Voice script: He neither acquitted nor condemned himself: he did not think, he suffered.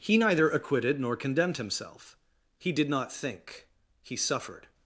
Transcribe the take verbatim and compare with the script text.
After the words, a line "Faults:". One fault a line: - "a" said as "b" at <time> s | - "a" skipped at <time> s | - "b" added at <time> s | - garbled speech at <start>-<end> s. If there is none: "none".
He neither acquitted nor condemned himself: he did not think, he suffered.
Faults:
none